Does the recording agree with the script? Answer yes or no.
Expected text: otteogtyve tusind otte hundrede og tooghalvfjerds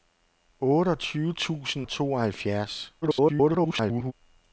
no